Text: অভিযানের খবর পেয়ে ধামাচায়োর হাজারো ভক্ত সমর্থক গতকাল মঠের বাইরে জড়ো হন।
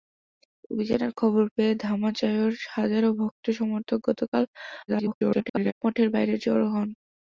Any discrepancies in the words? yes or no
yes